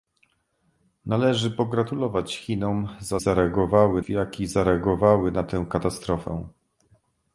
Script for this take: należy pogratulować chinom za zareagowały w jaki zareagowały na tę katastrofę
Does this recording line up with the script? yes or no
yes